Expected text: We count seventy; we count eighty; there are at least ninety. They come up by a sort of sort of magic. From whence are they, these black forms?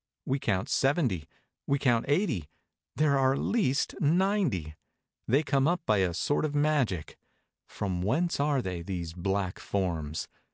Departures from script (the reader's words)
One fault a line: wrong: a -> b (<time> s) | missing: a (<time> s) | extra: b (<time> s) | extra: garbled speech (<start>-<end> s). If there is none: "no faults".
missing: sort of (6.5 s)